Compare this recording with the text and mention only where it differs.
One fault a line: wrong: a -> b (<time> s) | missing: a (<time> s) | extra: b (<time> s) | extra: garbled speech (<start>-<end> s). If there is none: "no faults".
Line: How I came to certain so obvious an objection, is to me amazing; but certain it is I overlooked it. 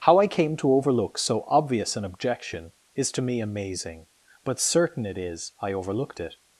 wrong: certain -> overlook (0.7 s)